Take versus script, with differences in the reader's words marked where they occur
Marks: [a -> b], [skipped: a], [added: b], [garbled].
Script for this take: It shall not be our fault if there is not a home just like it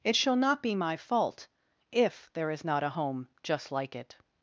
It shall not be [our -> my] fault if there is not a home just like it